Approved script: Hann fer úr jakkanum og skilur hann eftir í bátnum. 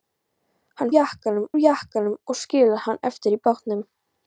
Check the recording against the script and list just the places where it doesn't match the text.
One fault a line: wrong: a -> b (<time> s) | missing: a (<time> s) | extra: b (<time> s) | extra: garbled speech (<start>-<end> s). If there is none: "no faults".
wrong: fer -> jakkanum (0.9 s)